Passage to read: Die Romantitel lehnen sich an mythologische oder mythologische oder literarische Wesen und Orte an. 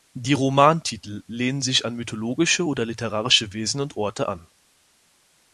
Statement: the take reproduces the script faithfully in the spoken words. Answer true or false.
false